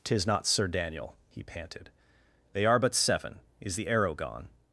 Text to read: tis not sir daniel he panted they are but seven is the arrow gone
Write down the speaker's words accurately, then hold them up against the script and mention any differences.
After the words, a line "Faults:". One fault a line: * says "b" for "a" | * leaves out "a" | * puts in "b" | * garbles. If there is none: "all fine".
tis not sir daniel he panted they are but seven is the arrow gone
Faults:
all fine